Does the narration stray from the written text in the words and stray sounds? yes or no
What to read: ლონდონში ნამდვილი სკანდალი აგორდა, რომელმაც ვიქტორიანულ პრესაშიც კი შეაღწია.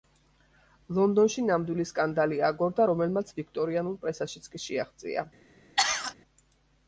yes